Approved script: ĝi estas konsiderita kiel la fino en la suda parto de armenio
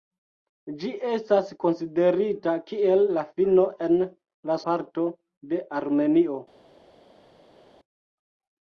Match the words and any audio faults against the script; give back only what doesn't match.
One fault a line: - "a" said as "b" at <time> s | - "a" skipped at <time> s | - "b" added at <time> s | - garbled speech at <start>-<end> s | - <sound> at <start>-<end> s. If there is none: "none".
- "suda" skipped at 4.6 s